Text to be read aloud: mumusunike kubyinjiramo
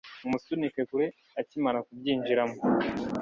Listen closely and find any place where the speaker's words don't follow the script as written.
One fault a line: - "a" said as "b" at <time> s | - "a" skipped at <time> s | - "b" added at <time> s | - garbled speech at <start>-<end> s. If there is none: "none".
- "kure akimara" added at 0.9 s